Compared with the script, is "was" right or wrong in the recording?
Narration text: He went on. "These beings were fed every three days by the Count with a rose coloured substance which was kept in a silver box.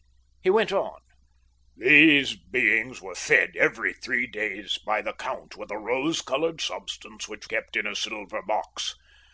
wrong